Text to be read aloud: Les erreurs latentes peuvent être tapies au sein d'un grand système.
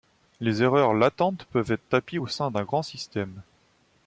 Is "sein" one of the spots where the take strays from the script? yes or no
no